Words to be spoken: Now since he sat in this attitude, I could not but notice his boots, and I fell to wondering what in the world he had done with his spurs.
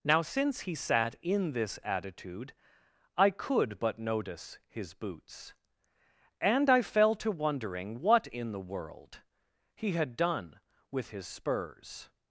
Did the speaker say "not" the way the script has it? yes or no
no